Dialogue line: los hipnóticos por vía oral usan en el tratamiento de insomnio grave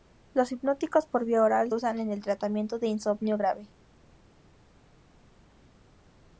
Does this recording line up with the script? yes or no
yes